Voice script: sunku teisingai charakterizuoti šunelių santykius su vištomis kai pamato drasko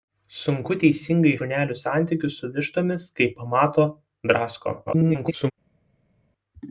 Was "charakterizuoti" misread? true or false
true